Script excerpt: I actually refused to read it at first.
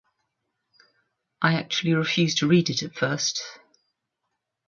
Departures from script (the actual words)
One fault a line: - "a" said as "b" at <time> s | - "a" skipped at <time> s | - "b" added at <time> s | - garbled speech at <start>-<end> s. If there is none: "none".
none